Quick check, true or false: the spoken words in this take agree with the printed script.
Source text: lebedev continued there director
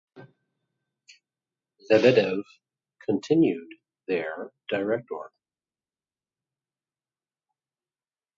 true